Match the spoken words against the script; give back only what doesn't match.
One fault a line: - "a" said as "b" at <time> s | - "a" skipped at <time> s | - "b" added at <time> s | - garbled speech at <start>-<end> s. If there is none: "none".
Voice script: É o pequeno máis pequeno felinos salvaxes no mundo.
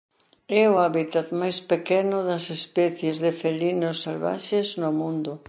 - "pequeno" said as "hábitat" at 0.8 s
- "das especies de" added at 2.2 s